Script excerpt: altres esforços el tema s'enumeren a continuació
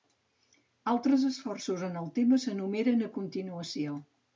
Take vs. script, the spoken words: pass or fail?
fail